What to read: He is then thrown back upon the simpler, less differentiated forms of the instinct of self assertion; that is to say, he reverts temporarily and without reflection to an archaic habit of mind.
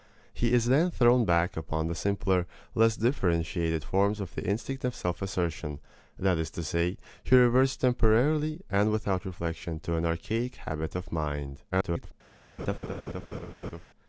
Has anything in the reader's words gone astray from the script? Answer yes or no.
yes